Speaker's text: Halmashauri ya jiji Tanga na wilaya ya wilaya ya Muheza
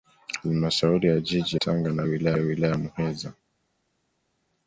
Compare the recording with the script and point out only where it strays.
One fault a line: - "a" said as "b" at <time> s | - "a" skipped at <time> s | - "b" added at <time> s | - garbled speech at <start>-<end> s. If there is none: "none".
none